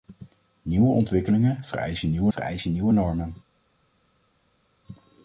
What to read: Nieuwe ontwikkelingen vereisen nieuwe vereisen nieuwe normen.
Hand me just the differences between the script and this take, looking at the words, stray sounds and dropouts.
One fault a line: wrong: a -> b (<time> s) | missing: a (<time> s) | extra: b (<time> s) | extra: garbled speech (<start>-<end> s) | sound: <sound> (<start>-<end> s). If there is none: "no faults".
no faults